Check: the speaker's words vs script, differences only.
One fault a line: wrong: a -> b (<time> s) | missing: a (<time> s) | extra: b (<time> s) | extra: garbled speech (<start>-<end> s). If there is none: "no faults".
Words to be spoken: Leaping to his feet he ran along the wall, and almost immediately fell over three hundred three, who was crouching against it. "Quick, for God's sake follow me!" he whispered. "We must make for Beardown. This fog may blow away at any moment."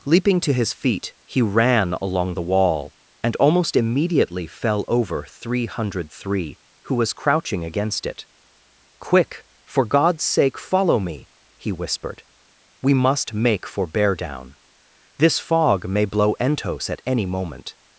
wrong: away -> entos (16.4 s)